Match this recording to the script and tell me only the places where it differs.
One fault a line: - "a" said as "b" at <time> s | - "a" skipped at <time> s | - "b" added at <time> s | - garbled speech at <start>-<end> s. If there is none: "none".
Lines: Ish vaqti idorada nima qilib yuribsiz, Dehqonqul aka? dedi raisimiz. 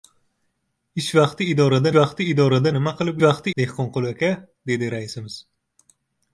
- "vaqti idorada" added at 2.0 s
- "yuribsiz" said as "vaqti" at 3.2 s